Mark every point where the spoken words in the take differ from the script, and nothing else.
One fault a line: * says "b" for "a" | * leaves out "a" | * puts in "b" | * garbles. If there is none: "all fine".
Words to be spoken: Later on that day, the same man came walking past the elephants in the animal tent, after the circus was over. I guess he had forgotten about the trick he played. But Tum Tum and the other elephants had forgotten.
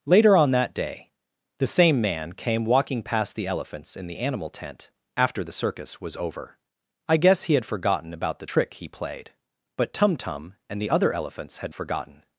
all fine